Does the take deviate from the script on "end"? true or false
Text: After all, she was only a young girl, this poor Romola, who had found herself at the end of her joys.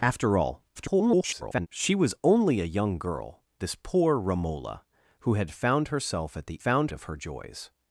true